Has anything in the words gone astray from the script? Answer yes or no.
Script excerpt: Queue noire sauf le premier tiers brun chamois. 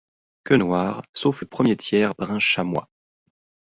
no